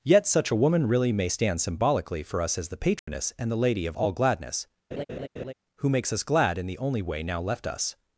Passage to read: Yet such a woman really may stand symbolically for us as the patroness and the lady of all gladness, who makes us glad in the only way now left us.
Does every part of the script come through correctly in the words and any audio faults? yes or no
no